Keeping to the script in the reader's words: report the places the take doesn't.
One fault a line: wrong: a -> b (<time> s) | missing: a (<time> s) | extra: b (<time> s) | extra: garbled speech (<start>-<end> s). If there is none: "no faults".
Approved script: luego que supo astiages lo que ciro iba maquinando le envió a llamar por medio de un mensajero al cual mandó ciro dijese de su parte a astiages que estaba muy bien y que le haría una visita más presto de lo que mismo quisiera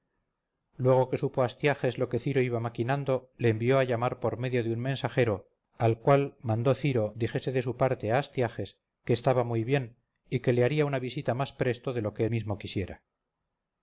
no faults